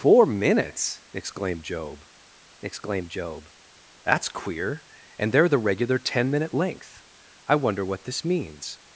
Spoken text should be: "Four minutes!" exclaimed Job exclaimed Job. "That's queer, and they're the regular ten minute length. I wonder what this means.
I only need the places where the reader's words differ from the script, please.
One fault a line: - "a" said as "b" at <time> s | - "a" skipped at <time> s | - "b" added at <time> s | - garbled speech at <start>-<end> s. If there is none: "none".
none